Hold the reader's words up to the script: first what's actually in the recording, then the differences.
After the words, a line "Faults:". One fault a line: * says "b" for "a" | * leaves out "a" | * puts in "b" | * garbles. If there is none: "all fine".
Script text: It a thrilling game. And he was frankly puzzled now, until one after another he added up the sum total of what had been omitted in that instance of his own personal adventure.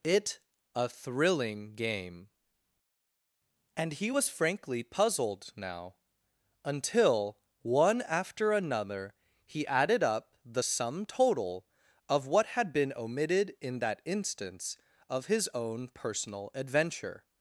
It a thrilling game. And he was frankly puzzled now, until one after another he added up the sum total of what had been omitted in that instance of his own personal adventure.
Faults:
all fine